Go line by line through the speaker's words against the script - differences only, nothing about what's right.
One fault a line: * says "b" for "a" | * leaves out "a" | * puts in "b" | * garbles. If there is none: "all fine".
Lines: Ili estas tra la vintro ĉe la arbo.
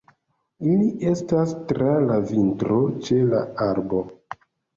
all fine